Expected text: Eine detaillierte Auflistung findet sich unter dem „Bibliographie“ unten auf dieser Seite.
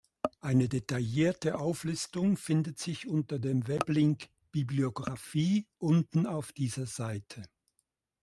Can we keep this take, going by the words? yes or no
no